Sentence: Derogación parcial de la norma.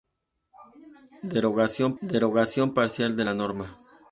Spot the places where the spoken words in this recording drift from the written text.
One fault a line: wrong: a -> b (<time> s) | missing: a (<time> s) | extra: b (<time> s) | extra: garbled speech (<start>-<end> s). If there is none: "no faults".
extra: derogación (2.0 s)